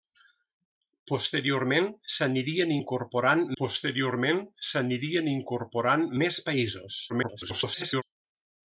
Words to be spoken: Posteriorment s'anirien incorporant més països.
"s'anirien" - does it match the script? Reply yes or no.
yes